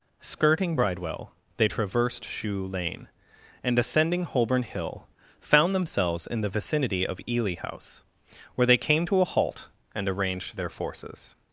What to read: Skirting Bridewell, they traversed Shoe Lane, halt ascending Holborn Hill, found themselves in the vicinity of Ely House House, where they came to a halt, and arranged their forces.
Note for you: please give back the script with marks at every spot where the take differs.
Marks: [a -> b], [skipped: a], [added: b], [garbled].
Skirting Bridewell, they traversed Shoe Lane, [halt -> and] ascending Holborn Hill, found themselves in the vicinity of Ely House [skipped: House,] where they came to a halt, and arranged their forces.